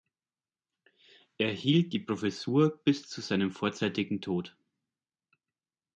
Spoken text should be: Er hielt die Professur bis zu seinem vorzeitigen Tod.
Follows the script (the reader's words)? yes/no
yes